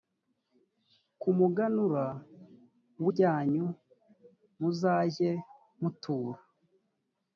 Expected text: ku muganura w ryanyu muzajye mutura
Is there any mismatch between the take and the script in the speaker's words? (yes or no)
no